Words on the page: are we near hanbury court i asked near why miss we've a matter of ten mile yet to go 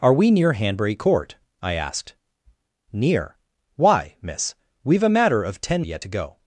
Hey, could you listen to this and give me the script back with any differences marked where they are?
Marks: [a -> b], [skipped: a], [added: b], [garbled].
are we near hanbury court i asked near why miss we've a matter of ten [skipped: mile] yet to go